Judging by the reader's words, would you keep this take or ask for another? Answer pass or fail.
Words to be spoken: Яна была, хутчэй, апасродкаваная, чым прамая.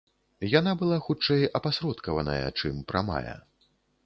pass